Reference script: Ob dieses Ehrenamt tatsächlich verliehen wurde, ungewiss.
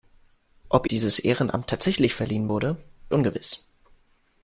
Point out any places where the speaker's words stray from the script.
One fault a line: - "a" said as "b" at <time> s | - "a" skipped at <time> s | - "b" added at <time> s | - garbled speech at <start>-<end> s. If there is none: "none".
none